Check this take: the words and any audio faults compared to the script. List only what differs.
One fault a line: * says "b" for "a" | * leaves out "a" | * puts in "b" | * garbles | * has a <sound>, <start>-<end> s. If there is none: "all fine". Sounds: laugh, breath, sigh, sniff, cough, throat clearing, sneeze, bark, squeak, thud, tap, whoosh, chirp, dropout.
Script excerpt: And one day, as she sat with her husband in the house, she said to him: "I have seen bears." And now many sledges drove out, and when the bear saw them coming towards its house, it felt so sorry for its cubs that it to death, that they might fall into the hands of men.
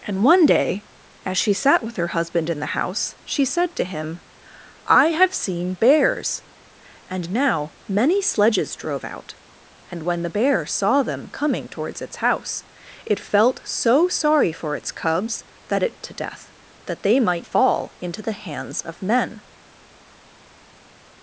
all fine